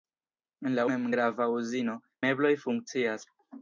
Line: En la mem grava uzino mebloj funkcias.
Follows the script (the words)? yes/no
yes